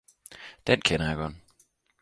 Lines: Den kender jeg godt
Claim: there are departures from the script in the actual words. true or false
false